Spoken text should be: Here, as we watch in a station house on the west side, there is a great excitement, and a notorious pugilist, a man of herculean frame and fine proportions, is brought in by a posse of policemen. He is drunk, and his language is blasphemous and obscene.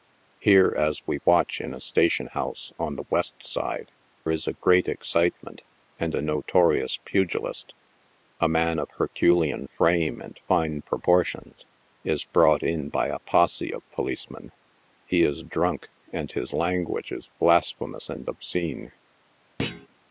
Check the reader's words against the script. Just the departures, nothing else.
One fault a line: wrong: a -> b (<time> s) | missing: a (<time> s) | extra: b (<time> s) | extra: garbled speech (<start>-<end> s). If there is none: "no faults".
missing: there (3.9 s)